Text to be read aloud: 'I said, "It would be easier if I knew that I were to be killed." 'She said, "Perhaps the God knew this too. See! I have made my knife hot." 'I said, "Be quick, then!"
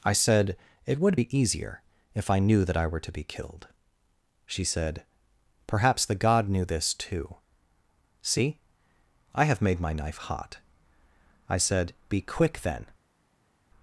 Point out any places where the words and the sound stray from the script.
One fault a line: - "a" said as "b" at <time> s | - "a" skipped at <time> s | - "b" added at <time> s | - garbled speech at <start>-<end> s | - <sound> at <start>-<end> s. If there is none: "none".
none